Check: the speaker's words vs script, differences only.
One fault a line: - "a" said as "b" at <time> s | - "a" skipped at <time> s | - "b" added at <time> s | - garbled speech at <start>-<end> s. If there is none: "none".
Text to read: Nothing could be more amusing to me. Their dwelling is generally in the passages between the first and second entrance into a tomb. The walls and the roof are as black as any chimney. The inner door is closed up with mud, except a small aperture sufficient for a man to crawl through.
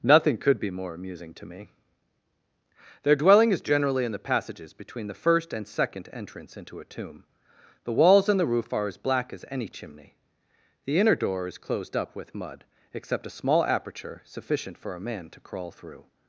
none